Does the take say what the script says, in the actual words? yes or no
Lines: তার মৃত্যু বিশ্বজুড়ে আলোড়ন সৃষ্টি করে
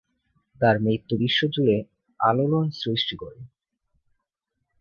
yes